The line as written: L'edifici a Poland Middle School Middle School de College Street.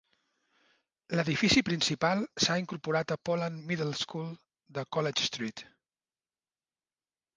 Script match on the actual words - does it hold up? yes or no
no